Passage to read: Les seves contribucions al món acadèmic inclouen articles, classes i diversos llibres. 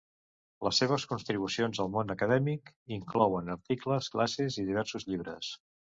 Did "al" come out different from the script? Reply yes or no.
no